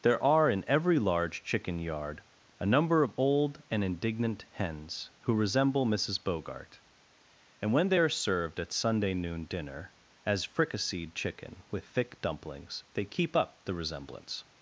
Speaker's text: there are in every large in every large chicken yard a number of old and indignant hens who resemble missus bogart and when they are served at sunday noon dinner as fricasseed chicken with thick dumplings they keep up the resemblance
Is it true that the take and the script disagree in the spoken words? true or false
true